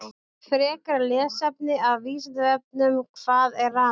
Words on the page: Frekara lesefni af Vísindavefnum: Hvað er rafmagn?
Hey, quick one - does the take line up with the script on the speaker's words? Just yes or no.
yes